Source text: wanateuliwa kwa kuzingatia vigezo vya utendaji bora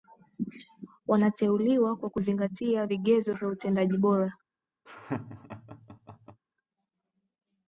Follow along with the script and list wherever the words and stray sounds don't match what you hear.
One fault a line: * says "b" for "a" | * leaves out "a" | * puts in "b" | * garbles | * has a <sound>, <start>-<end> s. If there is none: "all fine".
* has a laugh, 4.9-6.4 s